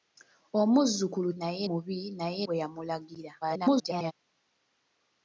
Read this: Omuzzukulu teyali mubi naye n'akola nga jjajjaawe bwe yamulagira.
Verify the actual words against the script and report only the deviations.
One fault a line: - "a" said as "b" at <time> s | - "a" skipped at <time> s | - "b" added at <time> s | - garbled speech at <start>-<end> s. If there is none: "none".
- "teyali" said as "naye" at 1.4 s
- "n'akola nga jjajjaawe" skipped at 2.4 s
- garbled speech at 3.4-4.1 s